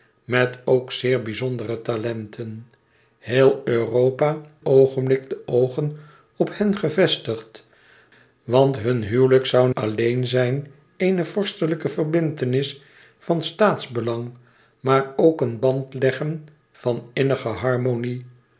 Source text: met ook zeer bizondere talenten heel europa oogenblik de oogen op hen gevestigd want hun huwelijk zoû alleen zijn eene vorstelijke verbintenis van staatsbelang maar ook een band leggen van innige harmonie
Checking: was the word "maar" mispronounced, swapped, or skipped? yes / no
no